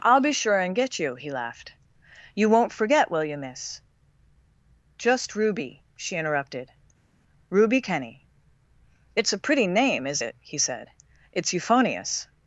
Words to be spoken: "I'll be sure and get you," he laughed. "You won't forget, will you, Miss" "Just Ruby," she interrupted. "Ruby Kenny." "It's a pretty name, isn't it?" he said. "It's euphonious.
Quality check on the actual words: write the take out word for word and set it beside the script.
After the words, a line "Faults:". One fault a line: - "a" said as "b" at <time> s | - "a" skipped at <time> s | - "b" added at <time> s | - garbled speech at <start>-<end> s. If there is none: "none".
"I'll be sure and get you," he laughed. "You won't forget, will you, Miss" "Just Ruby," she interrupted. "Ruby Kenny." "It's a pretty name, is it?" he said. "It's euphonious.
Faults:
- "isn't" said as "is" at 10.1 s